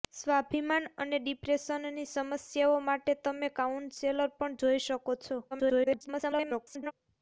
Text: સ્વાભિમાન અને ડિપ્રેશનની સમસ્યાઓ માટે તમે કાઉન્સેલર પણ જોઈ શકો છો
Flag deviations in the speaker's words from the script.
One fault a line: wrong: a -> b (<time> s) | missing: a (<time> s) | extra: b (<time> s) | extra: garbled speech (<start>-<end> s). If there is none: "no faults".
extra: garbled speech (5.5-6.9 s)